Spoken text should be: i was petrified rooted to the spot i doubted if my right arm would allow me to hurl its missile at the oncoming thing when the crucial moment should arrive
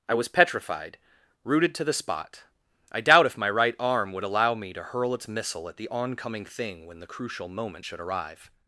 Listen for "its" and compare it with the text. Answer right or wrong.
right